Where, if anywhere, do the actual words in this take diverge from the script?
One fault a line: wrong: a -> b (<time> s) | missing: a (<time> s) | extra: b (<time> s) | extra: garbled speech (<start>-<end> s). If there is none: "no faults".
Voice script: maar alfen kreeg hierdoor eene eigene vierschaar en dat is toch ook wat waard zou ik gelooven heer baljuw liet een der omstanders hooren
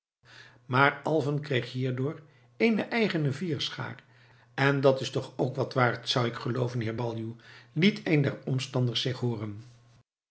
extra: zich (9.0 s)